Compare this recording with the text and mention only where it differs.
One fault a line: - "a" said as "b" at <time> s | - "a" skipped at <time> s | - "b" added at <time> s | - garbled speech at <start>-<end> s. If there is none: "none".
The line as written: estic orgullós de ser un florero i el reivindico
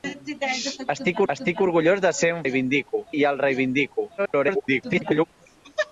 - "estic" added at 1.3 s
- "florero" said as "reivindico" at 2.4 s
- garbled speech at 4.2-5.2 s